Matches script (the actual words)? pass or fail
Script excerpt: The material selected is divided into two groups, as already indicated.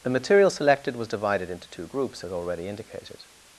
fail